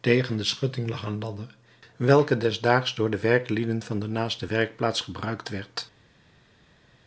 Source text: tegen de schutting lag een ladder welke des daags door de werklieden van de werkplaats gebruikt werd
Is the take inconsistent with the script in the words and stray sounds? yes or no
yes